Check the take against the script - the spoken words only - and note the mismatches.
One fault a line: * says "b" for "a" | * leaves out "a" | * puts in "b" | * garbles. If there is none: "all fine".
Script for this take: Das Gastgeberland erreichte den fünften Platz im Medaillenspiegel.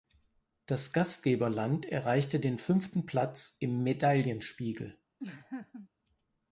all fine